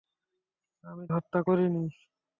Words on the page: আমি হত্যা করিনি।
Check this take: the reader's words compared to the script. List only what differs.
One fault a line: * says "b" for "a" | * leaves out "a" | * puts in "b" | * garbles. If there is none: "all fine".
all fine